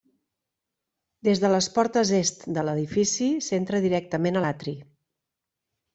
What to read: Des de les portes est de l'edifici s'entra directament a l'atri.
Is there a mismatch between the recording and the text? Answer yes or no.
no